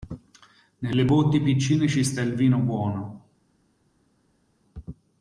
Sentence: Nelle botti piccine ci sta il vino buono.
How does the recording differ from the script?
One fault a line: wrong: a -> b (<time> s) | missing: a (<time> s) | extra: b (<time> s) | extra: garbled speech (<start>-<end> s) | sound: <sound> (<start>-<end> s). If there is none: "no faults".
no faults